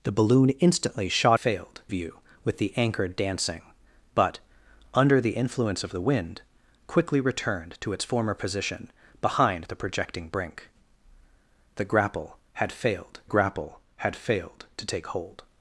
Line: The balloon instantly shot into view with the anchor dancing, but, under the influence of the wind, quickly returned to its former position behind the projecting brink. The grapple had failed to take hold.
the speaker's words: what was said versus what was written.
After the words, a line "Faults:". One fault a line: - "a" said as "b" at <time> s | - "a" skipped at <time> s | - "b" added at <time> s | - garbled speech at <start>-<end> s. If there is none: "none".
The balloon instantly shot failed view with the anchor dancing, but, under the influence of the wind, quickly returned to its former position behind the projecting brink. The grapple had failed grapple had failed to take hold.
Faults:
- "into" said as "failed" at 1.3 s
- "grapple had failed" added at 13.2 s